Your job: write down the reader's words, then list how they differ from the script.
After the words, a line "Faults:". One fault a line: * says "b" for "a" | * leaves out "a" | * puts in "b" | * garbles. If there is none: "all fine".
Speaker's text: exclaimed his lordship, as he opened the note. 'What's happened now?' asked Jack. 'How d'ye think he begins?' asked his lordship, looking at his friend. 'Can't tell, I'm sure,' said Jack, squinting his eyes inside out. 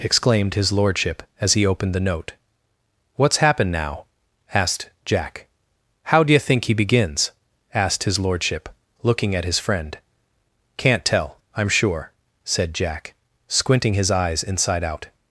exclaimed his lordship, as he opened the note. 'What's happened now?' asked Jack. 'How d'ye think he begins?' asked his lordship, looking at his friend. 'Can't tell, I'm sure,' said Jack, squinting his eyes inside out.
Faults:
all fine